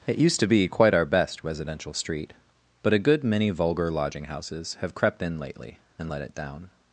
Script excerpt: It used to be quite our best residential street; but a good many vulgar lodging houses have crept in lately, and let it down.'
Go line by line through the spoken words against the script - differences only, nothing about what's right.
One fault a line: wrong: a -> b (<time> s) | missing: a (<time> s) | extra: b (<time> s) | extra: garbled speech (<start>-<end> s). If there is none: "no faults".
no faults